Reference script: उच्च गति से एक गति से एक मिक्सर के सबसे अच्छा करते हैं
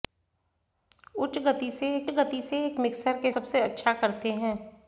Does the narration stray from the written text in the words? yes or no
no